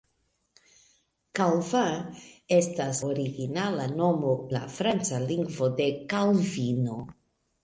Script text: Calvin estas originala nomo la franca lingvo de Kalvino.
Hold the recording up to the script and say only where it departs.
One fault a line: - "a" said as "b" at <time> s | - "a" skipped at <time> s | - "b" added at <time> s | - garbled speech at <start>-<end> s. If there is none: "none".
none